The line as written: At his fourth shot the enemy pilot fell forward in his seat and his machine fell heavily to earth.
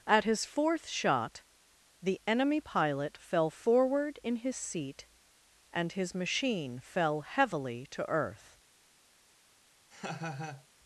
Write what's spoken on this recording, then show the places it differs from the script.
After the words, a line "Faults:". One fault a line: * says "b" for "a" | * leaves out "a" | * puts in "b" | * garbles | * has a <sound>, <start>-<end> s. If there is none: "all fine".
At his fourth shot the enemy pilot fell forward in his seat and his machine fell heavily to earth.
Faults:
* has a laugh, 9.9-10.7 s